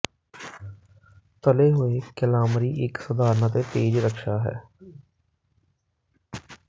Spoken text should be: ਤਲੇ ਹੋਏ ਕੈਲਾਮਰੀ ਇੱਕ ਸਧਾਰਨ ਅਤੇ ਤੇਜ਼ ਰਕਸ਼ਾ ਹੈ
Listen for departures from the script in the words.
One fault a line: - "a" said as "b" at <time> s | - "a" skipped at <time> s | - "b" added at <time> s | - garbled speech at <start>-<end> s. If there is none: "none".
none